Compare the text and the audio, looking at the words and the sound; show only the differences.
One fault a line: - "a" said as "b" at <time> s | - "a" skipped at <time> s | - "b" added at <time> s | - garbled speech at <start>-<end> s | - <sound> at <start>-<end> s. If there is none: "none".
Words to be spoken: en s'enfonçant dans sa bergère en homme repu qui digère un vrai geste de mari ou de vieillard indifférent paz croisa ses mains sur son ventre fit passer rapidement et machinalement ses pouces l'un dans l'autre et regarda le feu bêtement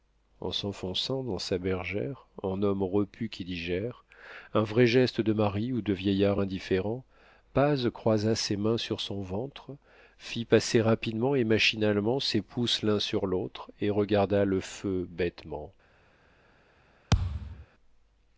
- "dans" said as "sur" at 13.0 s
- thud at 17.1-17.7 s